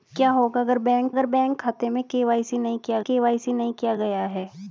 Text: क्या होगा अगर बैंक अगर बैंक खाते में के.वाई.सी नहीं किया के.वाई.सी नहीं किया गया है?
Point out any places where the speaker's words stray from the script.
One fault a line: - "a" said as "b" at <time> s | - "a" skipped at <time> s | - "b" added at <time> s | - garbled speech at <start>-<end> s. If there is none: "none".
none